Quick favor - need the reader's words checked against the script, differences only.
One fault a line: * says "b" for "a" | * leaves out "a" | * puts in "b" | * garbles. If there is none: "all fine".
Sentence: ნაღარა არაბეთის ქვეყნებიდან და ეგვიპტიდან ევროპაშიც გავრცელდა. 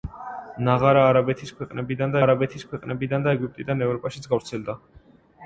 * puts in "არაბეთის ქვეყნებიდან"